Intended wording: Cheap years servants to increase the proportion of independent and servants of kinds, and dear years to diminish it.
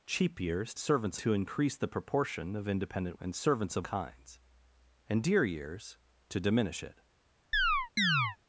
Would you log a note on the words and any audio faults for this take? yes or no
yes